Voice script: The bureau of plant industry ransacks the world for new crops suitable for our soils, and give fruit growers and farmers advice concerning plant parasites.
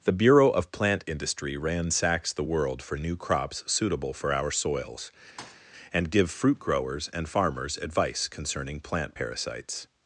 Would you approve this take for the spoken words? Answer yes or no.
yes